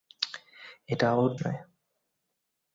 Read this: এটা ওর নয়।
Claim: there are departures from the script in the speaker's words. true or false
false